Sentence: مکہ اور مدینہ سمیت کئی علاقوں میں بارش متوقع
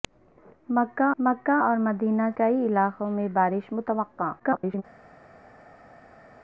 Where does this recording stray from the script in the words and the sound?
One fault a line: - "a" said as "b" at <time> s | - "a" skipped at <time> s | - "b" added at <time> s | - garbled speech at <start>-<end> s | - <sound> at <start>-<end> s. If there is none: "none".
- "مکہ" added at 1.2 s
- "سمیت" skipped at 2.3 s
- garbled speech at 4.4-4.8 s